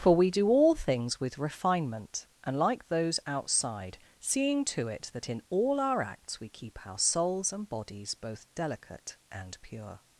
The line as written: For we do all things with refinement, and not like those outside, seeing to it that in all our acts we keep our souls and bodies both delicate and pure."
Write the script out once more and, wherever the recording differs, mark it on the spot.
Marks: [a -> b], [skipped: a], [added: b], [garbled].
For we do all things with refinement, and [skipped: not] like those outside, seeing to it that in all our acts we keep our souls and bodies both delicate and pure."